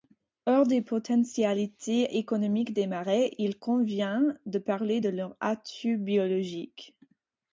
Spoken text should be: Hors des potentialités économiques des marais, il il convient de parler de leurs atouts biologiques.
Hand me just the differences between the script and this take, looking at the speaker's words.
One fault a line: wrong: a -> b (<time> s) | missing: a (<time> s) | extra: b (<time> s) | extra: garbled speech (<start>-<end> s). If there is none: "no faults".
missing: il (3.6 s)